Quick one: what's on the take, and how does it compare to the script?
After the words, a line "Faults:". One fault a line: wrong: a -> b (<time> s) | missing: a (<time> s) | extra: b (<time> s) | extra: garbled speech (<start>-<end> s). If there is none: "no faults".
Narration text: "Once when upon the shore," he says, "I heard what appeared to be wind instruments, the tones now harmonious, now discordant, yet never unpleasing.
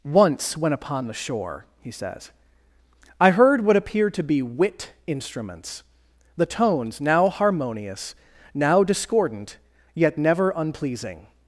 "Once when upon the shore," he says, "I heard what appeared to be wit instruments, the tones now harmonious, now discordant, yet never unpleasing.
Faults:
wrong: wind -> wit (4.4 s)